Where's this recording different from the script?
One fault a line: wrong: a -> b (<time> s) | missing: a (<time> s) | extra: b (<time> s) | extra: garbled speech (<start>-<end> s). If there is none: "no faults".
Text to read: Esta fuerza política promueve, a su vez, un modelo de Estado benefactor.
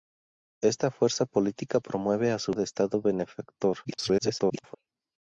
missing: vez un modelo (2.5 s)
extra: garbled speech (3.8-4.8 s)